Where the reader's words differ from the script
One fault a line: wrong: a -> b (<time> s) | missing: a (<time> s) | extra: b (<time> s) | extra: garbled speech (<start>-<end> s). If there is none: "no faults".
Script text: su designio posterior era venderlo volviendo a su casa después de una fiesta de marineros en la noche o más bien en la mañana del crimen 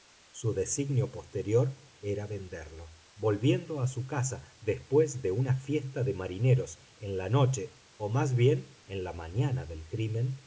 no faults